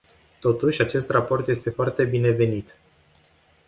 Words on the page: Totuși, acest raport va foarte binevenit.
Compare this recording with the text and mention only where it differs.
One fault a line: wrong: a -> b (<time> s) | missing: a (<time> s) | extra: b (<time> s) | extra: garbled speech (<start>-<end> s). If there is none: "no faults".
wrong: va -> este (1.5 s)